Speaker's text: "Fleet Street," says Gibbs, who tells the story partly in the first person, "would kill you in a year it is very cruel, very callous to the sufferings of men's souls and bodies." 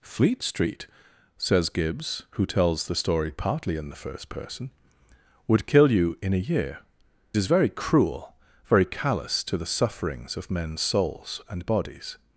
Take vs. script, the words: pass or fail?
fail